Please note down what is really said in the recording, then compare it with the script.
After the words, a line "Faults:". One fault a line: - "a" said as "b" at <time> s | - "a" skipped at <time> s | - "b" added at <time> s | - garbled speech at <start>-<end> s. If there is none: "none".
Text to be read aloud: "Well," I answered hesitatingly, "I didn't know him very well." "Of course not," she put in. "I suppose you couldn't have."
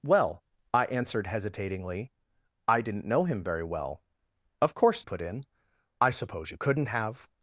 "Well," I answered hesitatingly, "I didn't know him very well." "Of course put in. "I suppose you couldn't have."
Faults:
- "not she" skipped at 5.0 s